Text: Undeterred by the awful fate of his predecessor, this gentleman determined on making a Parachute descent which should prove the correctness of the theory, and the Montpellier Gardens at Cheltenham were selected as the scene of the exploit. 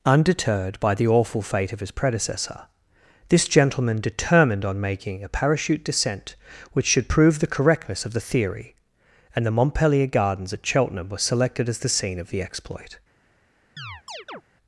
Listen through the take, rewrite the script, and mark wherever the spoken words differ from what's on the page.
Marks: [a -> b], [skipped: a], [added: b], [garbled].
Undeterred by the awful fate of his predecessor, this gentleman determined on making a Parachute descent which should prove the correctness of the theory, and the Montpellier Gardens at Cheltenham were selected as the scene of the exploit.